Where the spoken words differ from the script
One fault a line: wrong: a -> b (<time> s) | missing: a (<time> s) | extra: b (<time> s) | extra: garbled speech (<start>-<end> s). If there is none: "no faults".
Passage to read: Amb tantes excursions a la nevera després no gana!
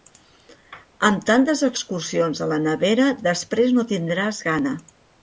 extra: tindràs (3.9 s)